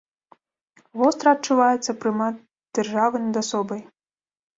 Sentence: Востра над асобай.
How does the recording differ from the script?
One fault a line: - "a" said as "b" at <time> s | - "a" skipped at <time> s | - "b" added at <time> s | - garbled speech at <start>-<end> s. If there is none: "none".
- "адчуваецца прымат дзяржавы" added at 1.4 s